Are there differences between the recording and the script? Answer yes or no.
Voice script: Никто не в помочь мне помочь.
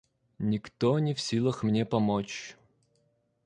yes